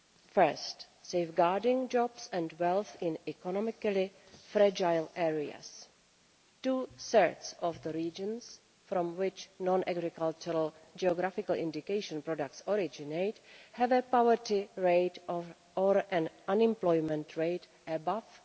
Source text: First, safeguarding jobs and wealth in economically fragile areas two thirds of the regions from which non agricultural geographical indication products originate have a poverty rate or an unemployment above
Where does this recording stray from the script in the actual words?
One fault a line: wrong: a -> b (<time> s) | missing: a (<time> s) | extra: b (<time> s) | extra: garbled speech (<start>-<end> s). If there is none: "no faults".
extra: rate (17.4 s)